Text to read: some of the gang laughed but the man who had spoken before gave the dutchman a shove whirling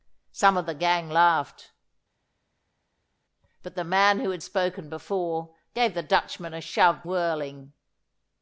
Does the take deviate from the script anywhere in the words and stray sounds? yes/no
no